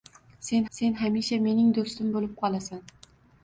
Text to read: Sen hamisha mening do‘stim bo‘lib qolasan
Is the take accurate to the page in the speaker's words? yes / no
no